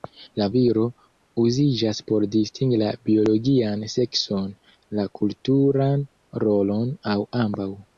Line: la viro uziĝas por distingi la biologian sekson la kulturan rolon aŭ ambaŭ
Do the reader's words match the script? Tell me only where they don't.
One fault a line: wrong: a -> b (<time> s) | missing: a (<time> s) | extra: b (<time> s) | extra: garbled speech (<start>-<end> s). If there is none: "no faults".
no faults